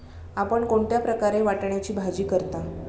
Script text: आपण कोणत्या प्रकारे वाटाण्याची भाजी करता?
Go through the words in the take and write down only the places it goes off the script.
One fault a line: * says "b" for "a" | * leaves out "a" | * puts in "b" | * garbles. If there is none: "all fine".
all fine